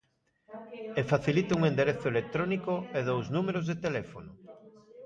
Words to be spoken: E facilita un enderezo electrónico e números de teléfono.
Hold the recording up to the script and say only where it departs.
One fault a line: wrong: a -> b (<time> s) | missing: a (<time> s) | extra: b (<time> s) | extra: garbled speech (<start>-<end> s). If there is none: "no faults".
extra: dous (3.1 s)